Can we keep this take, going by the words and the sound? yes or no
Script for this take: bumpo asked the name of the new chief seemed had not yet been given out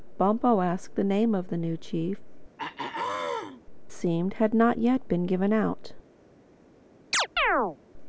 no